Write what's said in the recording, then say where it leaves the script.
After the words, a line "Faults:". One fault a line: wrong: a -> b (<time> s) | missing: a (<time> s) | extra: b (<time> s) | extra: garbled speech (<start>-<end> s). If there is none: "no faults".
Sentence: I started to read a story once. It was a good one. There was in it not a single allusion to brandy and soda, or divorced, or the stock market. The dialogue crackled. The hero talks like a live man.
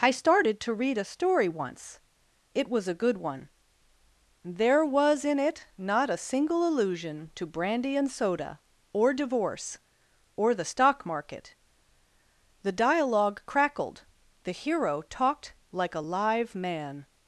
I started to read a story once. It was a good one. There was in it not a single allusion to brandy and soda, or divorce, or the stock market. The dialogue crackled. The hero talked like a live man.
Faults:
wrong: divorced -> divorce (9.1 s)
wrong: talks -> talked (15.0 s)